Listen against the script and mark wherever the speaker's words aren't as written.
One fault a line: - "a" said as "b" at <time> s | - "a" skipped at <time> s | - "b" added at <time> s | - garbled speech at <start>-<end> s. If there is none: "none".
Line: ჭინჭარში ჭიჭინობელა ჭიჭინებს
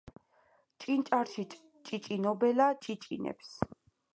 none